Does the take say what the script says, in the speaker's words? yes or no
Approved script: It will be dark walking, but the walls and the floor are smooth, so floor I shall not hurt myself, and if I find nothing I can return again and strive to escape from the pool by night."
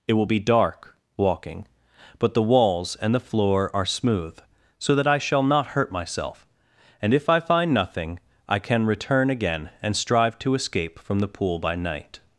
no